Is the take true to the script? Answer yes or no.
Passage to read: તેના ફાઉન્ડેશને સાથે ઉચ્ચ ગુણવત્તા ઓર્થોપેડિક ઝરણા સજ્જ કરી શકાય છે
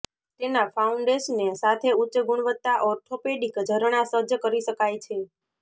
yes